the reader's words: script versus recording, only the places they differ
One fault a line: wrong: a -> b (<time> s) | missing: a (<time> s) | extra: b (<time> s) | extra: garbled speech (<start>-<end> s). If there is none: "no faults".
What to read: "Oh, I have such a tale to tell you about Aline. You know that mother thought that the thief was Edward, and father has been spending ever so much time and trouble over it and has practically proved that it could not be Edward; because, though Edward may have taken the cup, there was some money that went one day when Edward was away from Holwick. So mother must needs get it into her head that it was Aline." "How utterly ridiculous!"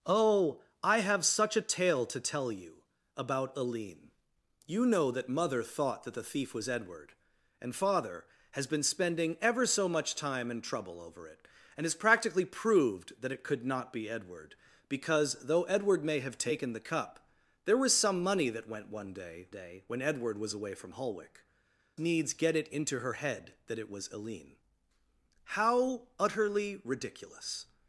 extra: day (19.5 s)
missing: So mother must (21.5 s)